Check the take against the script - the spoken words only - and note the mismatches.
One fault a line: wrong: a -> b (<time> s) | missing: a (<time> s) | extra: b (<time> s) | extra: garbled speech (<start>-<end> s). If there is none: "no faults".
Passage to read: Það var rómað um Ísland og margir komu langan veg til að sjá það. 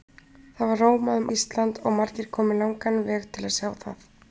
no faults